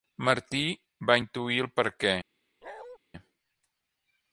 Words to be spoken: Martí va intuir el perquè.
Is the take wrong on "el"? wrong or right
right